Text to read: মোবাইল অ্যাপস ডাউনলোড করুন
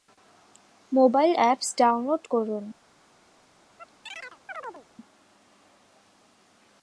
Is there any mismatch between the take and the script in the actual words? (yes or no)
no